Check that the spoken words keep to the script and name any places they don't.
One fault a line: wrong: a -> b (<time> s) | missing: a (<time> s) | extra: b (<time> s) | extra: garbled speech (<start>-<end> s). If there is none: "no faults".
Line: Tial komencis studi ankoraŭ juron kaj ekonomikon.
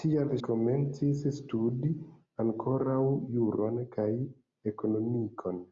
no faults